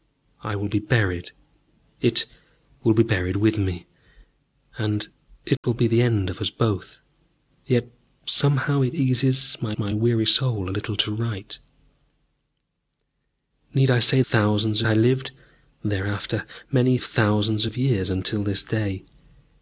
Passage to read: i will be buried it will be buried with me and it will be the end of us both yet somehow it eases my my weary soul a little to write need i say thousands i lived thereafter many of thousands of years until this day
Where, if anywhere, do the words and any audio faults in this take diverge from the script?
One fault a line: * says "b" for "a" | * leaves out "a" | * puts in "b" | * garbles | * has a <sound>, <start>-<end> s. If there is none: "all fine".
* has a dropout, 5.6-5.6 s